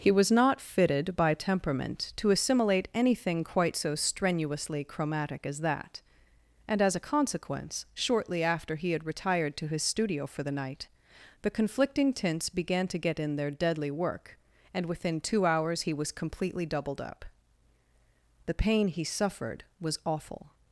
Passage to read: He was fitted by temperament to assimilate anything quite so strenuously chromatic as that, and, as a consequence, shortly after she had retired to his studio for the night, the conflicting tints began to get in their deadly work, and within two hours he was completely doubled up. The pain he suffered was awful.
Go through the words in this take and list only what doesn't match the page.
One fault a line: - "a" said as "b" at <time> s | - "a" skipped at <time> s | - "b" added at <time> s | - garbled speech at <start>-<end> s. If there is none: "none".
- "not" added at 0.3 s
- "she" said as "he" at 8.8 s